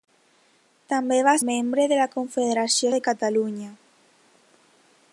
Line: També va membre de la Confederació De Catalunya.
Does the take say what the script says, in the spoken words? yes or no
yes